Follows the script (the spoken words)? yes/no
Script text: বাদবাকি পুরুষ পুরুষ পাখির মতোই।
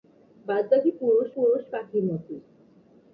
yes